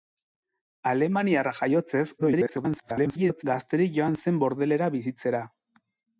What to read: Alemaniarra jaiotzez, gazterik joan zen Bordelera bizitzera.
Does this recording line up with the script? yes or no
no